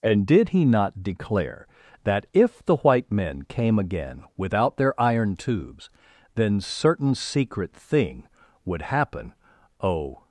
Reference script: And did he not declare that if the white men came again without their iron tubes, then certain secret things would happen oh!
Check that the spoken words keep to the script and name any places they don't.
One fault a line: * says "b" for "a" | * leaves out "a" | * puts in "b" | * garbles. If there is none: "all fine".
* says "thing" for "things"